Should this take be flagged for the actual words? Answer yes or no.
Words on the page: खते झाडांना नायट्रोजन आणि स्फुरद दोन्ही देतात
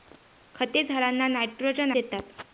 yes